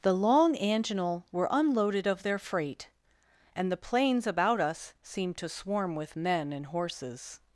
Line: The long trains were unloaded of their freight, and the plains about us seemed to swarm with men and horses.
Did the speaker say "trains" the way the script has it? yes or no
no